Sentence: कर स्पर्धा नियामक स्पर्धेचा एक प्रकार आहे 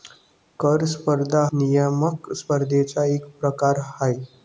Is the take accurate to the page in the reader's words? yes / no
yes